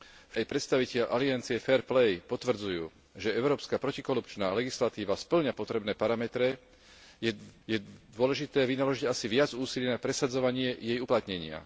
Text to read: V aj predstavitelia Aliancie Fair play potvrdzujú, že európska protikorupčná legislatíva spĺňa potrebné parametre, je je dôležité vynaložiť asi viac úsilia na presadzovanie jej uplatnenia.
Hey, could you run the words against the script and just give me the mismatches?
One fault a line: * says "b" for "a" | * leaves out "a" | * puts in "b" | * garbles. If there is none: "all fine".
all fine